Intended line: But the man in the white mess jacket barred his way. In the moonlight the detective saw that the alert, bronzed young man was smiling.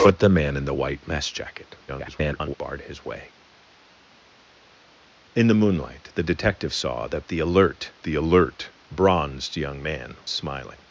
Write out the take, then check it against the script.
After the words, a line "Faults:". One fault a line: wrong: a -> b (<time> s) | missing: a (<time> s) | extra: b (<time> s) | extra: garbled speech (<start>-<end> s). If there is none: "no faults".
But the man in the white mess jacket [garbled] barred his way. In the moonlight the detective saw that the alert the alert, bronzed young man smiling.
Faults:
extra: garbled speech (1.9-2.5 s)
extra: the alert (8.0 s)
missing: was (10.2 s)